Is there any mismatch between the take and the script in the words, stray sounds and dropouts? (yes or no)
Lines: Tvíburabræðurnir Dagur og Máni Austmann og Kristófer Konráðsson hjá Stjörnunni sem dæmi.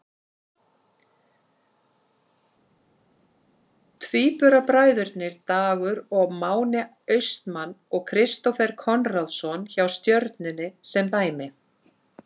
no